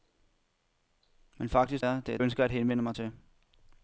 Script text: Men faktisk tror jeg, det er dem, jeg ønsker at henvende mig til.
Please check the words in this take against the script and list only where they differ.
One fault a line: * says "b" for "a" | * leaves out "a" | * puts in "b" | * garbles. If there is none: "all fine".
* leaves out "tror"
* leaves out "dem jeg"